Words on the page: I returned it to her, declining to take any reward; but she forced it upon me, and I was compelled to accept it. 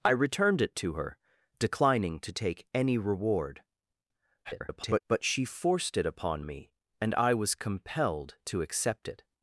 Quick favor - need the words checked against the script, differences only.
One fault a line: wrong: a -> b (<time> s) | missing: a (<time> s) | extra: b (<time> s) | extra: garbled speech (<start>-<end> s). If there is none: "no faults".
extra: garbled speech (4.4-5.0 s)